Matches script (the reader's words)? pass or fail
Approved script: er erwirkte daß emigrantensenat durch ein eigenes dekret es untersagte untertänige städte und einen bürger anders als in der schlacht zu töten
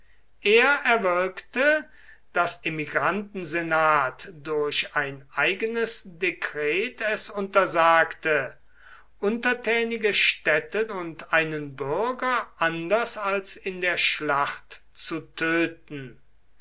pass